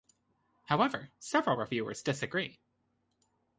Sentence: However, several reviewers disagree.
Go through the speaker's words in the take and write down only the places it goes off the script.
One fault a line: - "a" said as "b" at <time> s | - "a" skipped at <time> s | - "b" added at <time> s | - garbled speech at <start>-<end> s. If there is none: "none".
none